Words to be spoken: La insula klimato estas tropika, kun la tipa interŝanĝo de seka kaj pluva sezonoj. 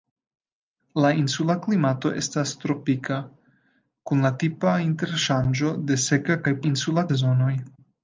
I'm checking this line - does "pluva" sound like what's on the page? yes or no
no